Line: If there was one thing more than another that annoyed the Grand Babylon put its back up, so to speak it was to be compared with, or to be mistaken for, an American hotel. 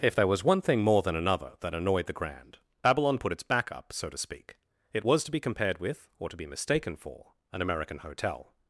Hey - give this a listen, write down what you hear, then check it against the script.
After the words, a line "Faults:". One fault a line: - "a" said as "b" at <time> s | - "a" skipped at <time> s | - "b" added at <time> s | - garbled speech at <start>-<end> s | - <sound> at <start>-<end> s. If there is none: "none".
If there was one thing more than another that annoyed the Grand Babylon put its back up, so to speak it was to be compared with, or to be mistaken for, an American hotel.
Faults:
none